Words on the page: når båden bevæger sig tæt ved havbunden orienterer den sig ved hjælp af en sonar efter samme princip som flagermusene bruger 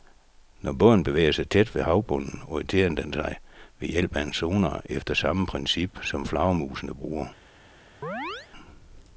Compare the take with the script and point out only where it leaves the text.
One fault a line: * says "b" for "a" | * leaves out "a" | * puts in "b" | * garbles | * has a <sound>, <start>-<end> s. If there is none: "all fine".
* has a chirp, 8.0-8.5 s